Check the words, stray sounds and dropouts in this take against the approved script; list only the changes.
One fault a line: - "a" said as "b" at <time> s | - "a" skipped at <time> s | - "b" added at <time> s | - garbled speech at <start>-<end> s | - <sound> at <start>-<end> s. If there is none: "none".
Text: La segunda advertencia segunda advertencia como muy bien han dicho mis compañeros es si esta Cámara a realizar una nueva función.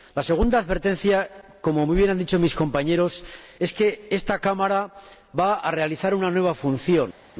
- "segunda advertencia" skipped at 1.3 s
- "si" said as "que" at 3.7 s
- "va" added at 5.4 s